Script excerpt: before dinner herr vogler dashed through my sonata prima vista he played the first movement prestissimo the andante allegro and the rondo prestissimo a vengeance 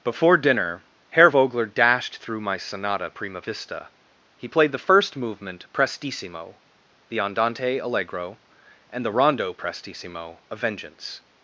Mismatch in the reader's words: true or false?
false